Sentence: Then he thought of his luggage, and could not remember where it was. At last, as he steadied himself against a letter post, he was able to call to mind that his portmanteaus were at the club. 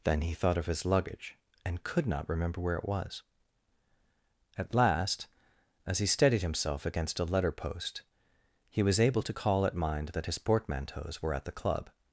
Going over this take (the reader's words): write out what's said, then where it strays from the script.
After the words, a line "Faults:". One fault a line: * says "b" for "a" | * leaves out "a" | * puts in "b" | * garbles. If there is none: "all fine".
Then he thought of his luggage, and could not remember where it was. At last, as he steadied himself against a letter post, he was able to call at mind that his portmanteaus were at the club.
Faults:
* says "at" for "to"